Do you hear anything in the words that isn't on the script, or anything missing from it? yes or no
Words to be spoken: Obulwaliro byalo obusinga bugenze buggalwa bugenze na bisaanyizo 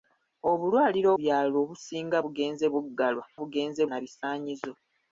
no